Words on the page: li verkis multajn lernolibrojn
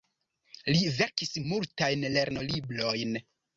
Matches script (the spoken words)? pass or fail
pass